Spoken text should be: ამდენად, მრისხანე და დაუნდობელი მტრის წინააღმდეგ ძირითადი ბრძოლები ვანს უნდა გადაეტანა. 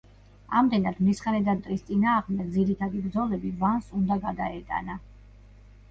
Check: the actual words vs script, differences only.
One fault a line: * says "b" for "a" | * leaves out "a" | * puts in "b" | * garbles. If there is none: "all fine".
* leaves out "დაუნდობელი"